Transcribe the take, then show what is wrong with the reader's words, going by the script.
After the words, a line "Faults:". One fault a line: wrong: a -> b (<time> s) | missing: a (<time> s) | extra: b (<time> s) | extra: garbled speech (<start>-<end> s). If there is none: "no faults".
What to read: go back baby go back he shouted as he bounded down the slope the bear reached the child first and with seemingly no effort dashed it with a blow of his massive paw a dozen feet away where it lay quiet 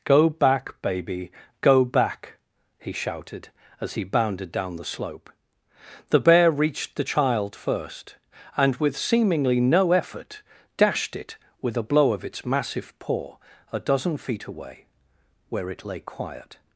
go back baby go back he shouted as he bounded down the slope the bear reached the child first and with seemingly no effort dashed it with a blow of its massive paw a dozen feet away where it lay quiet
Faults:
wrong: his -> its (12.2 s)